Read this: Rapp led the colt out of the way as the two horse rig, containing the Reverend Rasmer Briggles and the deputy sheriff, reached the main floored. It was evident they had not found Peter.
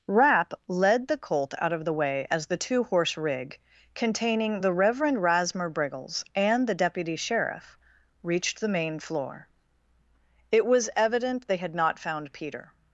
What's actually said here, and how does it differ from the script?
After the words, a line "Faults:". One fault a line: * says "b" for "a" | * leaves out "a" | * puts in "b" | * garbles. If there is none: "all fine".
Rapp led the colt out of the way as the two horse rig, containing the Reverend Rasmer Briggles and the deputy sheriff, reached the main floor. It was evident they had not found Peter.
Faults:
* says "floor" for "floored"